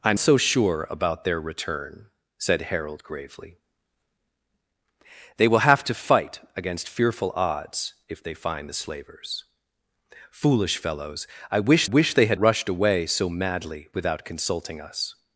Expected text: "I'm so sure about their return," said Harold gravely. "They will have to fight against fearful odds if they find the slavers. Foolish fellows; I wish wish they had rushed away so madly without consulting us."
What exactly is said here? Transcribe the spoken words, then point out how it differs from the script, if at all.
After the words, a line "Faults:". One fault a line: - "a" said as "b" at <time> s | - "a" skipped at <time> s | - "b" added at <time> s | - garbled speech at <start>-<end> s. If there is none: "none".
"I'm so sure about their return," said Harold gravely. "They will have to fight against fearful odds if they find the slavers. Foolish fellows; I wish wish they had rushed away so madly without consulting us."
Faults:
none